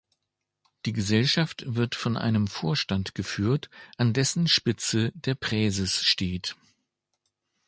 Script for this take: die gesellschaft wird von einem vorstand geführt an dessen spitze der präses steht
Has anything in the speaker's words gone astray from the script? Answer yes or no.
no